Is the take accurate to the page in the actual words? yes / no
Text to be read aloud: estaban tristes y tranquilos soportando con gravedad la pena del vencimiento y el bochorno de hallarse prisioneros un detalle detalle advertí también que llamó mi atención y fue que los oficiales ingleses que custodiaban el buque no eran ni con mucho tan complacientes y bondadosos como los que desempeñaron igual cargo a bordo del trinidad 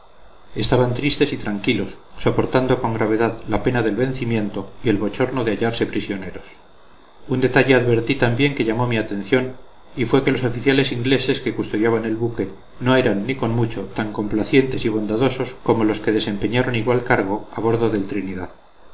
no